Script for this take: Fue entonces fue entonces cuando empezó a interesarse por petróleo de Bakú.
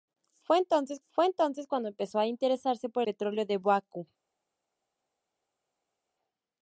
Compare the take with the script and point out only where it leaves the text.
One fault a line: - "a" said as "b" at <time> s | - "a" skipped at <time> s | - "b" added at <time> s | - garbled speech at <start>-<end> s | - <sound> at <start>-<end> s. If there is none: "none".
none